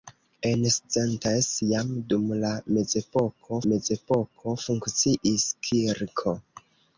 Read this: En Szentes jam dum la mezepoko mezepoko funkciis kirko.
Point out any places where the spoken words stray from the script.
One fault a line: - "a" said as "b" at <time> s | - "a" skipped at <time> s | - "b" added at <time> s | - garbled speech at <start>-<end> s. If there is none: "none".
none